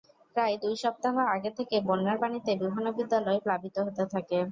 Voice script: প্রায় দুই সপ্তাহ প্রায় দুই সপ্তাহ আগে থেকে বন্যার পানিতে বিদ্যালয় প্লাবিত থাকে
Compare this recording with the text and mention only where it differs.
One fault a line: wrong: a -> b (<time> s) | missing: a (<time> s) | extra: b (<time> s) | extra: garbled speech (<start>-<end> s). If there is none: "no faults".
missing: প্রায় দুই সপ্তাহ (1.1 s)
extra: বিভিন্ন (2.6 s)
extra: হতে (3.9 s)